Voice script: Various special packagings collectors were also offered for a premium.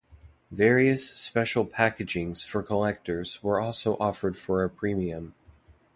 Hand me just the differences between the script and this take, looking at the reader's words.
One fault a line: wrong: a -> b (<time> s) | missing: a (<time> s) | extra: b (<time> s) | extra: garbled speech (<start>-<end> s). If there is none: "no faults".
extra: for (2.4 s)